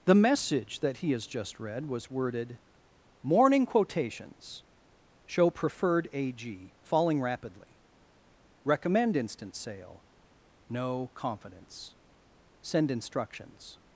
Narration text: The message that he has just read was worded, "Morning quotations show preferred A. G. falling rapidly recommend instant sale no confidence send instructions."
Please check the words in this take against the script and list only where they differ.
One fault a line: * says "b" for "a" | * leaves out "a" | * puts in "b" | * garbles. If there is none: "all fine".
all fine